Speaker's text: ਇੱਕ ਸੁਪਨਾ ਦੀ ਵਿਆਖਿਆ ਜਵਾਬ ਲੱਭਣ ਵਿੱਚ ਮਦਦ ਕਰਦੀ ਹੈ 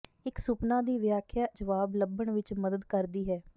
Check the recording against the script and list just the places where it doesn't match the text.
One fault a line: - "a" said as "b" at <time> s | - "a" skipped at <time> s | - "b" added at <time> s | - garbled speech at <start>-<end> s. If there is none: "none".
none